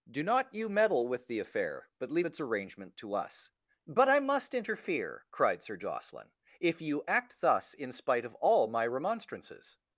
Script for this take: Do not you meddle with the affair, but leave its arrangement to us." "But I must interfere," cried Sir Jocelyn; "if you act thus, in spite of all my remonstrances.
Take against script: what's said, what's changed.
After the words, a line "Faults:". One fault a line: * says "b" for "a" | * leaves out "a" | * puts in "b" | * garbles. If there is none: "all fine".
Do not you meddle with the affair, but leave its arrangement to us." "But I must interfere," cried Sir Jocelyn; "if you act thus, in spite of all my remonstrances.
Faults:
all fine